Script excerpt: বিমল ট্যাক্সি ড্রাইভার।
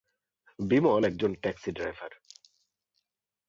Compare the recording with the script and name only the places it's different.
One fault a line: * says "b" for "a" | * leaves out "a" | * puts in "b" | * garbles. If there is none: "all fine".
* puts in "একজন"